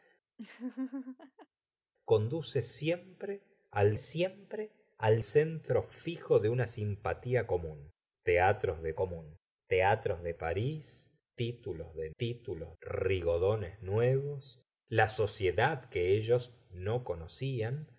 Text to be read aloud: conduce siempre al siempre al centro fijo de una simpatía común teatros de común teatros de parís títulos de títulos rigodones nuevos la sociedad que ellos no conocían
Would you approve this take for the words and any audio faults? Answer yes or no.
no